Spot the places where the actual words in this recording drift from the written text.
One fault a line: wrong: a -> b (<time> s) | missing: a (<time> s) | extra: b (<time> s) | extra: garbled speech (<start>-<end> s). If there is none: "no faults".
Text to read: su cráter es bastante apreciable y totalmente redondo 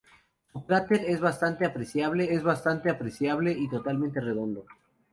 extra: es bastante apreciable (2.3 s)